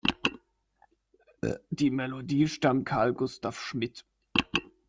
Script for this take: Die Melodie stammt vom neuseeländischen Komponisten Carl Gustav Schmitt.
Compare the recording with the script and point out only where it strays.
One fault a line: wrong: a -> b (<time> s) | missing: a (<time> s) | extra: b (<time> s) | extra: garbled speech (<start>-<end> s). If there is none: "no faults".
missing: vom neuseeländischen Komponisten (2.9 s)